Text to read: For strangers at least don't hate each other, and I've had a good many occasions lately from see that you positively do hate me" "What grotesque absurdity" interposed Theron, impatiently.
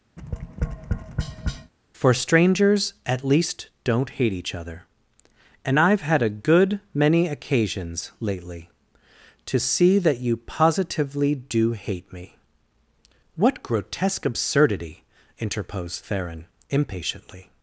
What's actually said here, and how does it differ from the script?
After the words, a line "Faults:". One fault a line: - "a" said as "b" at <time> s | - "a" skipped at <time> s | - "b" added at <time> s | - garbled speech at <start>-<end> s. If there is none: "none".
For strangers at least don't hate each other, and I've had a good many occasions lately to see that you positively do hate me" "What grotesque absurdity" interposed Theron, impatiently.
Faults:
- "from" said as "to" at 9.5 s